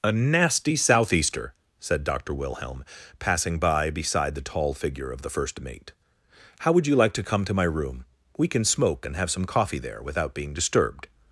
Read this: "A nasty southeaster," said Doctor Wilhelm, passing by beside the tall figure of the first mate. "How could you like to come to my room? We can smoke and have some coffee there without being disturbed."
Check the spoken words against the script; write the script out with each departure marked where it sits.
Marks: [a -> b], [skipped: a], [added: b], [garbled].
"A nasty southeaster," said Doctor Wilhelm, passing by beside the tall figure of the first mate. "How [could -> would] you like to come to my room? We can smoke and have some coffee there without being disturbed."